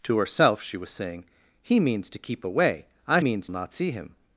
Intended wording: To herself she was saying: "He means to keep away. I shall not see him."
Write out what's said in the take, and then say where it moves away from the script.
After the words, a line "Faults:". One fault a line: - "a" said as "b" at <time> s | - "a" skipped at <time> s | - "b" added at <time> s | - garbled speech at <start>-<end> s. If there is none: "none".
To herself she was saying: "He means to keep away. I means not see him."
Faults:
- "shall" said as "means" at 3.2 s